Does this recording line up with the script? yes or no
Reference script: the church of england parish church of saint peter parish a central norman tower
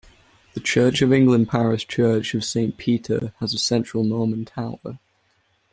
no